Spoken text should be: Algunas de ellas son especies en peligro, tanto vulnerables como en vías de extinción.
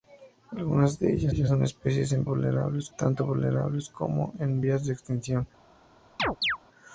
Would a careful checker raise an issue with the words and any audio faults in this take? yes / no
yes